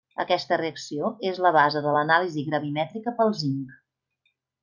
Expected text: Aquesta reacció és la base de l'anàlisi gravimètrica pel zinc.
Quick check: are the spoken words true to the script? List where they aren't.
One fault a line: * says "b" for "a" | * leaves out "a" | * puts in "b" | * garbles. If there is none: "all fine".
all fine